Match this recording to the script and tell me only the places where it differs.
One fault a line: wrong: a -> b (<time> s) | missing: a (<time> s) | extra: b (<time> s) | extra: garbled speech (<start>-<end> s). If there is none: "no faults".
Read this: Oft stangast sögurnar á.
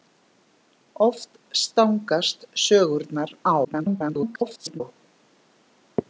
extra: garbled speech (3.6-4.8 s)